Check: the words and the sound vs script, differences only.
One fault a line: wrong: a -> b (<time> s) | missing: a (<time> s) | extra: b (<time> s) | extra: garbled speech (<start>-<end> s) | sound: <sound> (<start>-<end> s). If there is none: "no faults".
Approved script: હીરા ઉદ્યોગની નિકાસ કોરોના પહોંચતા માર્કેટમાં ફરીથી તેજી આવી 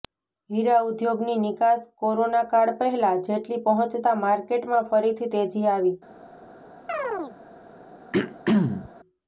extra: કાળ પહેલા જેટલી (2.5 s)
sound: chirp (6.9-7.4 s)
sound: throat clearing (8.1-8.9 s)